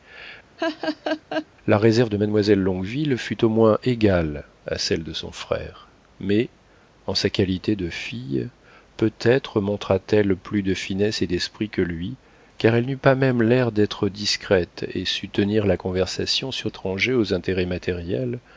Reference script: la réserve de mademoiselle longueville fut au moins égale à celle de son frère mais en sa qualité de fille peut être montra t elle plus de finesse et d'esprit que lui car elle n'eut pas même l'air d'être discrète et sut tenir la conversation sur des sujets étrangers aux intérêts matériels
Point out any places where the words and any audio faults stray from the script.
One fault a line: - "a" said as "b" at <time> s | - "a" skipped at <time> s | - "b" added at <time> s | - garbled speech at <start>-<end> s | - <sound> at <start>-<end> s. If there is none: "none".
- laugh at 0.6-1.5 s
- "des sujets" skipped at 16.7 s